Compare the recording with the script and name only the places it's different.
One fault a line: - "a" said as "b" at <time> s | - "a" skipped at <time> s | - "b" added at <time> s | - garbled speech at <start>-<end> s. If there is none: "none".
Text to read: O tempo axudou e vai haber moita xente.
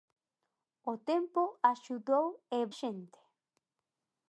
- "vai haber moita" skipped at 2.6 s